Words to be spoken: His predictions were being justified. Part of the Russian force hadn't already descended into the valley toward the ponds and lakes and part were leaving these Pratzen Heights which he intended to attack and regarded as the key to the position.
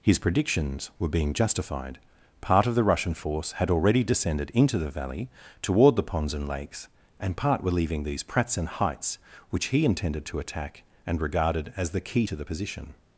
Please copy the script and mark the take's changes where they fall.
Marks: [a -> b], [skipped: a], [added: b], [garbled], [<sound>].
His predictions were being justified. Part of the Russian force [hadn't -> had] already descended into the valley toward the ponds and lakes and part were leaving these Pratzen Heights which he intended to attack and regarded as the key to the position.